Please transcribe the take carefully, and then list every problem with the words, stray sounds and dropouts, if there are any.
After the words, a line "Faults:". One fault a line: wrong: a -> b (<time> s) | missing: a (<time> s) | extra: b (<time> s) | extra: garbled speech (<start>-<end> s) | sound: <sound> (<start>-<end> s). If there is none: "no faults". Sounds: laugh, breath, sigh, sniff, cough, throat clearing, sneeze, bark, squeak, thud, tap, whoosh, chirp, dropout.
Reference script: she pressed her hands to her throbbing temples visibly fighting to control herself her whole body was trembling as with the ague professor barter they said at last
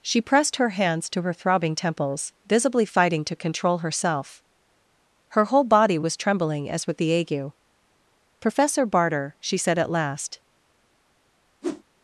she pressed her hands to her throbbing temples visibly fighting to control herself her whole body was trembling as with the ague professor barter she said at last
Faults:
wrong: they -> she (9.4 s)
sound: whoosh (11.6-11.8 s)